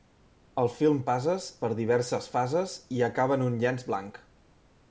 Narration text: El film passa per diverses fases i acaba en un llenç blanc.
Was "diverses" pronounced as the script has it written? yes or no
yes